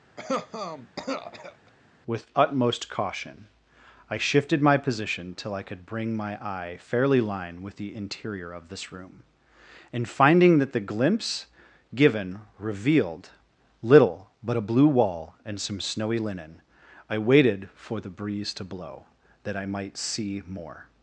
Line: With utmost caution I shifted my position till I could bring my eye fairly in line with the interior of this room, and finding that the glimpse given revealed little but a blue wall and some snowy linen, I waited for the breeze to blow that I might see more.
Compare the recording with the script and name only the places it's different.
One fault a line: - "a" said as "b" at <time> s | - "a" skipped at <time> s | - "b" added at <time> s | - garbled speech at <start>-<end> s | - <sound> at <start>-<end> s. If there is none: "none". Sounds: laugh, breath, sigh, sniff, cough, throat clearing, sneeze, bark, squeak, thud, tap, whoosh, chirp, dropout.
- cough at 0.2-1.7 s
- "in" skipped at 7.2 s